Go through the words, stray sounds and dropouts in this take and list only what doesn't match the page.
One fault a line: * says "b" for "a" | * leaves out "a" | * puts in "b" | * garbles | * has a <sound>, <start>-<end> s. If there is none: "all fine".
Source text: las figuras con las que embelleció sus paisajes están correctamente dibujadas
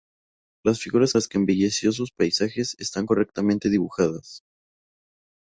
* leaves out "con"